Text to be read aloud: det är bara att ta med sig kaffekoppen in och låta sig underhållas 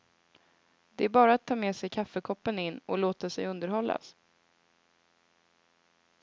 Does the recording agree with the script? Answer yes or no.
yes